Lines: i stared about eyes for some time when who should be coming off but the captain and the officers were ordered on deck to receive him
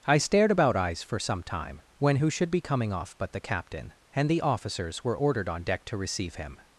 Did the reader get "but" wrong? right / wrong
right